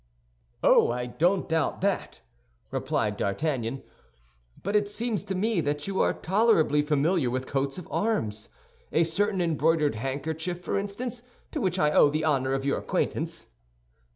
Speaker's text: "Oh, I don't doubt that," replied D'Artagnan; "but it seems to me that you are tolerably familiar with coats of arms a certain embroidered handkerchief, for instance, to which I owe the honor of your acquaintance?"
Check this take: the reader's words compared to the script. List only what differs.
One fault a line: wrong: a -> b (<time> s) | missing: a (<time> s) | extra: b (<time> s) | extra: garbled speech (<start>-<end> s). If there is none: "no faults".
no faults